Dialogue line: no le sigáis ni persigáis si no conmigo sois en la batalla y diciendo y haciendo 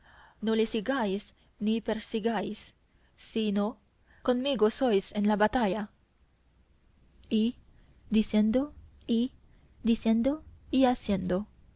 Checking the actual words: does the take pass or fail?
fail